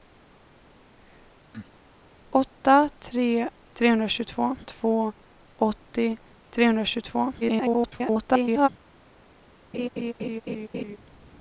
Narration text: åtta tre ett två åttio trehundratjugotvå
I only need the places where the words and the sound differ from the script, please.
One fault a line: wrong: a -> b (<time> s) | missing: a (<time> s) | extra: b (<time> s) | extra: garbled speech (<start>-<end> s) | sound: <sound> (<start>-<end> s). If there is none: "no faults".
sound: cough (1.5-1.8 s)
wrong: ett -> trehundratjugotvå (3.7 s)
extra: garbled speech (7.4-8.7 s)
sound: laugh (9.7-11.0 s)